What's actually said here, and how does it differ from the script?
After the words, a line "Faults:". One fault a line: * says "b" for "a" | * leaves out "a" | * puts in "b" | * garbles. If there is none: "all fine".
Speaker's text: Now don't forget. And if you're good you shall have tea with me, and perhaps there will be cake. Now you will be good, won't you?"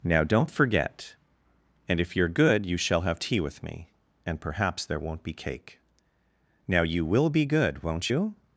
Now don't forget. And if you're good you shall have tea with me, and perhaps there won't be cake. Now you will be good, won't you?"
Faults:
* says "won't" for "will"